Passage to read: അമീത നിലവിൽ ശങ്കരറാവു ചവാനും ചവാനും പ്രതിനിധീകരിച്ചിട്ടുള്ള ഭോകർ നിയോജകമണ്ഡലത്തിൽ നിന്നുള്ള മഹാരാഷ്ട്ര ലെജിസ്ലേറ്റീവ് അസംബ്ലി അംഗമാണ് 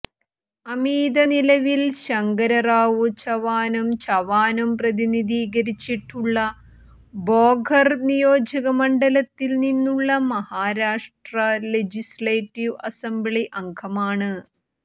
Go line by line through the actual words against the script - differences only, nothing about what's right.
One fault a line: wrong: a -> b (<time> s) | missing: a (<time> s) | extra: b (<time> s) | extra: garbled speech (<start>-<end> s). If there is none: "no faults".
no faults